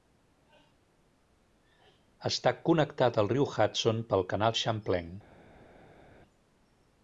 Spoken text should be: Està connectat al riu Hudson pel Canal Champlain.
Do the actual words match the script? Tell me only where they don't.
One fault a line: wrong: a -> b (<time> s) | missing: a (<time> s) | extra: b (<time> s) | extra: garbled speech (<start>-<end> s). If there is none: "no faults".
no faults